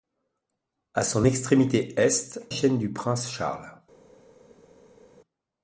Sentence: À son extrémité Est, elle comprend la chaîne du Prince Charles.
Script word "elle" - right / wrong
wrong